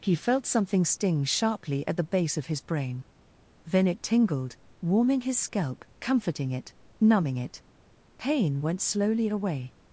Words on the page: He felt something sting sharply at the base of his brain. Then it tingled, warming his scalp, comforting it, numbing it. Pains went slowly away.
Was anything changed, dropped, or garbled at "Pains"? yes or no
yes